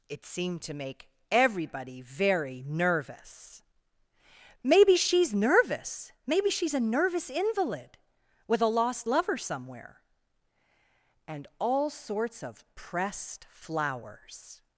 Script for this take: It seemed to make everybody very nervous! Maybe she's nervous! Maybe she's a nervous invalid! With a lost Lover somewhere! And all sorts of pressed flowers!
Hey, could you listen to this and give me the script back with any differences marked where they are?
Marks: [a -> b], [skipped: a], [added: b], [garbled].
It seemed to make everybody very nervous! Maybe she's nervous! Maybe she's a nervous invalid! With a lost Lover somewhere! And all sorts of pressed flowers!